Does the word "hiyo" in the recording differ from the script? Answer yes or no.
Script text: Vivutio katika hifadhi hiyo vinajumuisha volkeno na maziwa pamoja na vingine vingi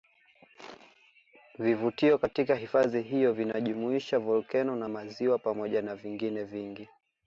no